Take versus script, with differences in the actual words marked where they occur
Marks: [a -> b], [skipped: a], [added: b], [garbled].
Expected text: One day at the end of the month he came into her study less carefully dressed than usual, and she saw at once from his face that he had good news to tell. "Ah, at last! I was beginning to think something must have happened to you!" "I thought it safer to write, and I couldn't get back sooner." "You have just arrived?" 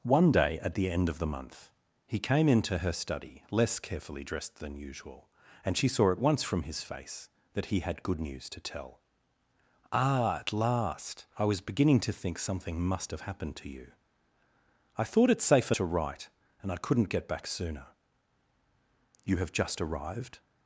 One day at the end of the month he came into her study less carefully dressed than usual, and she saw at once from his face that he had good news to tell. "Ah, at last! I was beginning to think something must have happened to you!" "I thought it safer to write, and I couldn't get back sooner." "You have just arrived?"